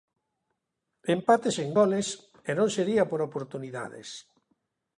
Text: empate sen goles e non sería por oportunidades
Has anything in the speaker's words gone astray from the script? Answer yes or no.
no